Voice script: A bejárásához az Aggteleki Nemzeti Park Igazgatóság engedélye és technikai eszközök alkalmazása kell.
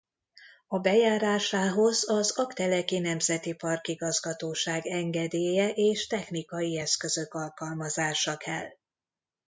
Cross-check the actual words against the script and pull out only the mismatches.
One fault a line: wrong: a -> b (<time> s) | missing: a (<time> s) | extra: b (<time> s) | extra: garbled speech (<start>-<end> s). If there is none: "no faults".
no faults